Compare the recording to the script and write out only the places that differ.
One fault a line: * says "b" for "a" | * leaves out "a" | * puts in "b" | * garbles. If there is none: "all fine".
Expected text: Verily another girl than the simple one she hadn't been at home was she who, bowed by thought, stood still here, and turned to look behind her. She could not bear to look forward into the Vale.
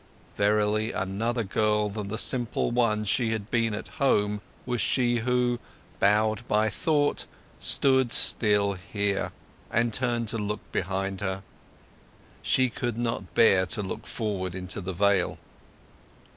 * says "had" for "hadn't"